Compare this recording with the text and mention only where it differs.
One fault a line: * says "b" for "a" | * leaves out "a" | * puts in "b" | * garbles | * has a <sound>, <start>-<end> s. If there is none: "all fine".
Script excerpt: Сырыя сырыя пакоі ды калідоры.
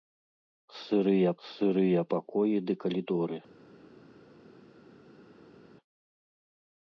all fine